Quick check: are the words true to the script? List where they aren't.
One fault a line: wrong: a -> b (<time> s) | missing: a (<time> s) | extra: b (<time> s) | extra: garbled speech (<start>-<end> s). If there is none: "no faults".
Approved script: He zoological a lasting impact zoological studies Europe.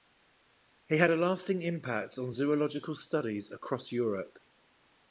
wrong: zoological -> had (1.0 s)
extra: on (2.2 s)
extra: across (3.5 s)